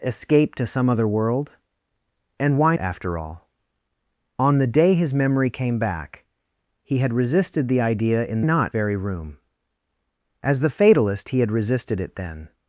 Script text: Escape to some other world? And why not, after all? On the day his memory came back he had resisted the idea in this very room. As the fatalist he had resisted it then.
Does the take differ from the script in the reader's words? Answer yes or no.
yes